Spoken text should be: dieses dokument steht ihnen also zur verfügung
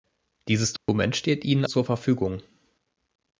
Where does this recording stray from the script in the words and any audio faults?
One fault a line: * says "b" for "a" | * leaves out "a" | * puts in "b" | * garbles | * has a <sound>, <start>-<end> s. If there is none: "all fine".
* has a dropout, 0.8-0.9 s
* leaves out "also"